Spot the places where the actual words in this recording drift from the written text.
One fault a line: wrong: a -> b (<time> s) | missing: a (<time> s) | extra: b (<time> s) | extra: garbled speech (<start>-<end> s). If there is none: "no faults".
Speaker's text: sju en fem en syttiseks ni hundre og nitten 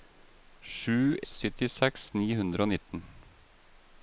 missing: en fem en (1.2 s)